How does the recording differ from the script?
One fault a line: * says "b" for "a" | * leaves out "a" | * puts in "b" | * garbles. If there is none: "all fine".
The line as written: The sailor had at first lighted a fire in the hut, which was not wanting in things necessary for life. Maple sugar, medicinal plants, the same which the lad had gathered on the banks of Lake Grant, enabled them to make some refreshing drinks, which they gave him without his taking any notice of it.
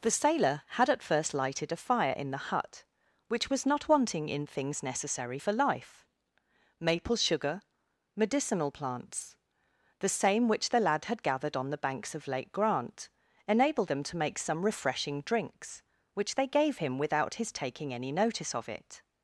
all fine